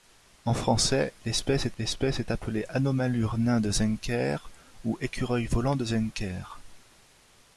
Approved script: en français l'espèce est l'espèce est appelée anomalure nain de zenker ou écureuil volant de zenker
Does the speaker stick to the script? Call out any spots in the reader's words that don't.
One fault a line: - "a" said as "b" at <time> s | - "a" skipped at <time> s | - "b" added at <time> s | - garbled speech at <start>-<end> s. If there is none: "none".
none